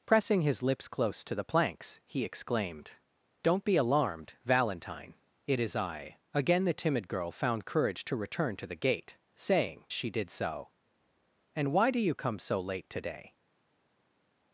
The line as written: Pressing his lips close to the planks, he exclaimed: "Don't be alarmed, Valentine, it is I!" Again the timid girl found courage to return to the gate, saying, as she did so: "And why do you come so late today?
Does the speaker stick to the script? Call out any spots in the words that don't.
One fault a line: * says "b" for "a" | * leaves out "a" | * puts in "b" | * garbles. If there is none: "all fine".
* leaves out "as"